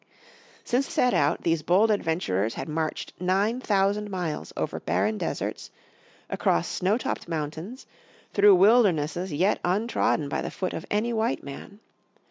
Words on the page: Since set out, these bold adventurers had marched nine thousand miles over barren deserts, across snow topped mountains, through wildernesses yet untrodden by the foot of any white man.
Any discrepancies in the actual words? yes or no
no